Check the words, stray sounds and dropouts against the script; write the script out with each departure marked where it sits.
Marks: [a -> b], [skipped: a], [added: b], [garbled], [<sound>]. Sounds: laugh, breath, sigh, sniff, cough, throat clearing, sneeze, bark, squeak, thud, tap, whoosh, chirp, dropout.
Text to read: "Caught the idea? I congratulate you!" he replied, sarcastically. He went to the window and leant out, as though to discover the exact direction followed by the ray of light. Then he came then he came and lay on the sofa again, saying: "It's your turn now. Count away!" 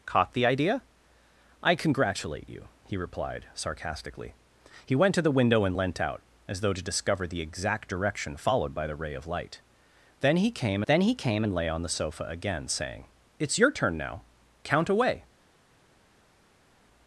"Caught the idea? I congratulate you!" he replied, sarcastically. He went to the window and leant out, as though to discover the exact direction followed by the ray of light. Then he came then he came and lay on the sofa again, saying: "It's your turn now. Count away!"